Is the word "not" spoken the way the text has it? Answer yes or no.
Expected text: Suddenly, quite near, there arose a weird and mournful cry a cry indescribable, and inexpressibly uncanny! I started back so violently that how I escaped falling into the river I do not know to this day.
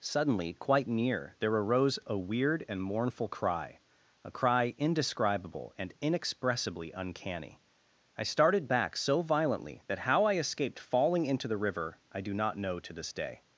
yes